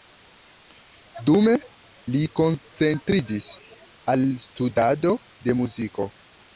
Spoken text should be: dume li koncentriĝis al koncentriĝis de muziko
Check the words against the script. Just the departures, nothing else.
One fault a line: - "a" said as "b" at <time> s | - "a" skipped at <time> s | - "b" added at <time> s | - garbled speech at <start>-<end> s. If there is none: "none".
- "koncentriĝis" said as "studado" at 4.5 s